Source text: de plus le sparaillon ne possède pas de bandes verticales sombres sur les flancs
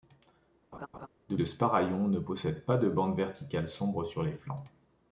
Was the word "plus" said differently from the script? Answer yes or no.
yes